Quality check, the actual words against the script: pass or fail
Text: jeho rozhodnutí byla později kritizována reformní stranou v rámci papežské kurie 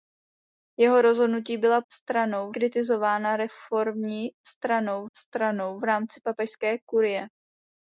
fail